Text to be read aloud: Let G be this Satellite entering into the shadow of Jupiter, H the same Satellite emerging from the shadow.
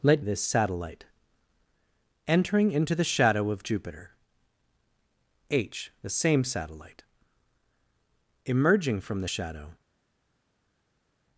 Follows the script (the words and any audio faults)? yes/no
no